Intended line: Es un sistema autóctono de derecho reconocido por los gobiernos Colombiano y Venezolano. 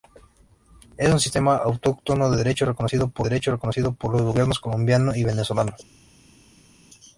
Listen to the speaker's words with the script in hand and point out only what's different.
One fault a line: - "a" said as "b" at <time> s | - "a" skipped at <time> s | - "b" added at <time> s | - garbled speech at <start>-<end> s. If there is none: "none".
- "derecho reconocido por" added at 3.2 s